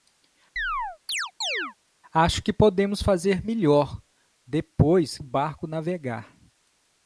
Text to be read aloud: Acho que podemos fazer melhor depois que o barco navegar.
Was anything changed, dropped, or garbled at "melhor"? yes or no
no